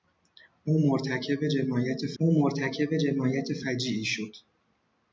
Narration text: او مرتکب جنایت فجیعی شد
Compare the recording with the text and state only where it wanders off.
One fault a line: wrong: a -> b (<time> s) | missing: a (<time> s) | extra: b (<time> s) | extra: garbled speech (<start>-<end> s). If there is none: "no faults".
extra: او مرتکب جنایت (2.2 s)